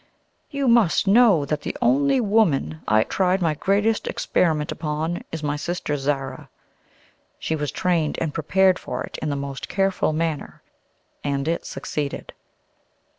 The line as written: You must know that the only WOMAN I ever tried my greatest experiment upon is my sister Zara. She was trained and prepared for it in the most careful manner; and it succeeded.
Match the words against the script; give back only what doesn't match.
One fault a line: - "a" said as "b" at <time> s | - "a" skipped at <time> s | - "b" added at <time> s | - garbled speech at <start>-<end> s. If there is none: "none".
- "ever" skipped at 3.0 s